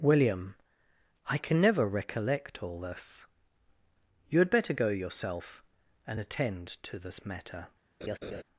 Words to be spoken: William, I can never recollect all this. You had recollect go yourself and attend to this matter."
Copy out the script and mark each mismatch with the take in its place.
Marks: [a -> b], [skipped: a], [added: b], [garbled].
William, I can never recollect all this. You had [recollect -> better] go yourself and attend to this matter."